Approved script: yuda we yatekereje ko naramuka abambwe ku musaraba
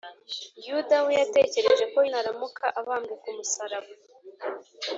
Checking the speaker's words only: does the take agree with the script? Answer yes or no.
yes